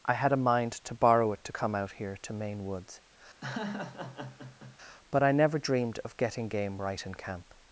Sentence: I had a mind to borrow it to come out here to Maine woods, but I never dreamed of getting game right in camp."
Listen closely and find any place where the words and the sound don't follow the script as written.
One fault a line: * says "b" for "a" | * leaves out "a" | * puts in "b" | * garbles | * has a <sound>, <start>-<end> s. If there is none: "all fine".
* has a laugh, 3.4-4.8 s